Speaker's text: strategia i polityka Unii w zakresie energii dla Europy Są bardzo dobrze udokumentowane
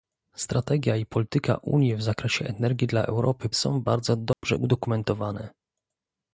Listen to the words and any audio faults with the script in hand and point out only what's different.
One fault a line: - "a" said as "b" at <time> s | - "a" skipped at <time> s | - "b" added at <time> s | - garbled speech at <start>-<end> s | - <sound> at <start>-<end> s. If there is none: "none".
- dropout at 4.3-4.4 s